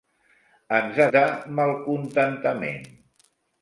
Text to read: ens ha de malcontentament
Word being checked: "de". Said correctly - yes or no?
yes